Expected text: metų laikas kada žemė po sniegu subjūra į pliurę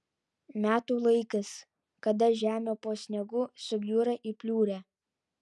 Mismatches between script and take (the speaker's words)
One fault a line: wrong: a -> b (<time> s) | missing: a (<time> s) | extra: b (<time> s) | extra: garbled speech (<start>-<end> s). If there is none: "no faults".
no faults